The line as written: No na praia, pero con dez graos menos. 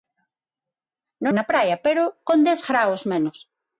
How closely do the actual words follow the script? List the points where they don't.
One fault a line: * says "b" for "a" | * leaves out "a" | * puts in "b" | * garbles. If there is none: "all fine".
all fine